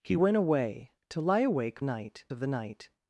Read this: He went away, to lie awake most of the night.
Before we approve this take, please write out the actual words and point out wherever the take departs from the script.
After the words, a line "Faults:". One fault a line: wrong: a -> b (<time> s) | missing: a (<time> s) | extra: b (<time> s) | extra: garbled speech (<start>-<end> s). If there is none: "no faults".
He went away, to lie awake night of the night.
Faults:
wrong: most -> night (1.8 s)